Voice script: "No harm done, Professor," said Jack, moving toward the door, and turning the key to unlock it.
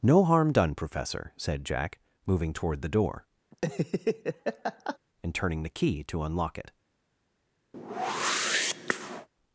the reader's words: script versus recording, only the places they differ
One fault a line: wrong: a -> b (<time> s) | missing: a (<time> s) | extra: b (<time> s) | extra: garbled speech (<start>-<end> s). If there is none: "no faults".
no faults